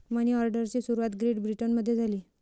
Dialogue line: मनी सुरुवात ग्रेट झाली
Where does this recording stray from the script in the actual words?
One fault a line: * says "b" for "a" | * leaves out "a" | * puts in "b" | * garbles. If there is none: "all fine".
* puts in "ऑर्डरची"
* puts in "ब्रिटनमध्ये"